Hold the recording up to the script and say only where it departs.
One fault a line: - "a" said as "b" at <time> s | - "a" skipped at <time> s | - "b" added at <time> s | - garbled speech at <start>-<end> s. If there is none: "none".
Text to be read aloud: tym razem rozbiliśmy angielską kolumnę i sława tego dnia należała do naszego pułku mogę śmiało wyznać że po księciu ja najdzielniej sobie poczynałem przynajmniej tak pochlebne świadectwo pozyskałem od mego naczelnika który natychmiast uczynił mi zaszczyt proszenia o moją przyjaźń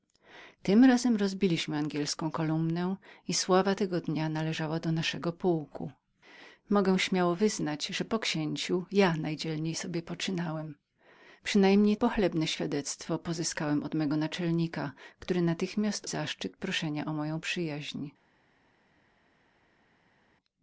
- "tak" skipped at 12.0 s
- "uczynił mi" skipped at 16.1 s